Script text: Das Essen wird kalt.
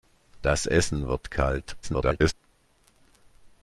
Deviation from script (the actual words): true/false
true